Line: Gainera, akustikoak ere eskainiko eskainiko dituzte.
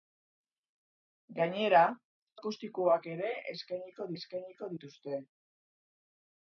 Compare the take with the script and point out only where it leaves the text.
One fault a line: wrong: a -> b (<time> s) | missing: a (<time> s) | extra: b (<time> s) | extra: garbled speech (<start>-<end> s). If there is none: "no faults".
no faults